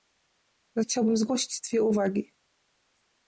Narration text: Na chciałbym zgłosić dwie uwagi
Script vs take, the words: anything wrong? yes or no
no